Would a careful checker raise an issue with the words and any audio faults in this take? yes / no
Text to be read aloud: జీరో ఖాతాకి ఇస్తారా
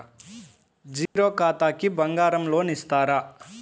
yes